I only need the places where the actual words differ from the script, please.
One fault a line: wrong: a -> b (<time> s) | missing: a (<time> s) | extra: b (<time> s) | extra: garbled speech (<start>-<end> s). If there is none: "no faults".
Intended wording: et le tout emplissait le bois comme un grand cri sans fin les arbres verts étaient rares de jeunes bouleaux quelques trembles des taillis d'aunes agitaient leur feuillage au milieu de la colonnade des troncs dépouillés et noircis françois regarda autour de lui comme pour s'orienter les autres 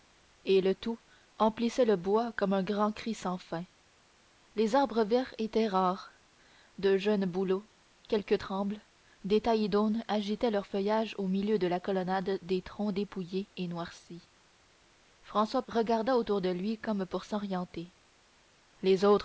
no faults